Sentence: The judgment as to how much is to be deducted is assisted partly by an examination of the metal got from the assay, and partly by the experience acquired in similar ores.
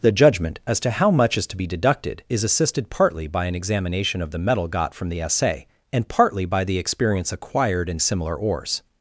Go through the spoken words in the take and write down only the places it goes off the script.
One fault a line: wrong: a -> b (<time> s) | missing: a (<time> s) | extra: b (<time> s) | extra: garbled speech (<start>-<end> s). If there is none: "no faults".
no faults